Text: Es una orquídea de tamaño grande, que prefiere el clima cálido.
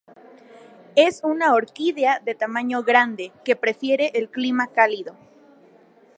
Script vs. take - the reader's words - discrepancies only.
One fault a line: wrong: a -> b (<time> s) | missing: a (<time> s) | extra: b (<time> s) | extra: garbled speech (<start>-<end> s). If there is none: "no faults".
no faults